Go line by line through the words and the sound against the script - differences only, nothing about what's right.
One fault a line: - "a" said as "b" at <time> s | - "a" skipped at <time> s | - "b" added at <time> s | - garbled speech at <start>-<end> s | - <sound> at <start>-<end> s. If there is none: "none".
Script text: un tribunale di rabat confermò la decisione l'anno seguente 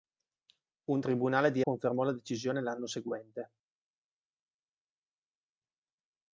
- "rabat" skipped at 1.6 s